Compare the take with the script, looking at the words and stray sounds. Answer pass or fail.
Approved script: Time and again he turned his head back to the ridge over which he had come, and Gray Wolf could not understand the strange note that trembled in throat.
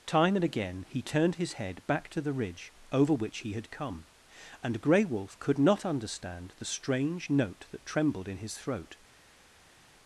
fail